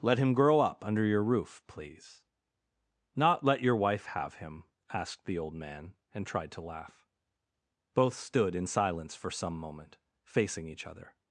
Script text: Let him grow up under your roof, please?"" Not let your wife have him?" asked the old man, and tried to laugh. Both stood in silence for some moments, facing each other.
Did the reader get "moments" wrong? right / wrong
wrong